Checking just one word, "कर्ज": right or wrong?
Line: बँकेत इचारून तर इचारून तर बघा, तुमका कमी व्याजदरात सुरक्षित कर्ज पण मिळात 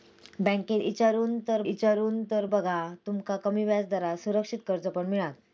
right